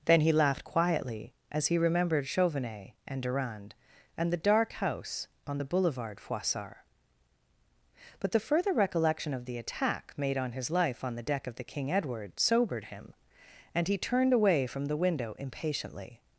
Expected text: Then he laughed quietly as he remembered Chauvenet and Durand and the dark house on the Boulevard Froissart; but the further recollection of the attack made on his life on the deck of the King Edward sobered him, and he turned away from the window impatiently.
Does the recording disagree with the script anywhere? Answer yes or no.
no